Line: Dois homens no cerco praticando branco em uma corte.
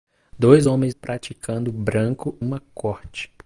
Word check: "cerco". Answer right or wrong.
wrong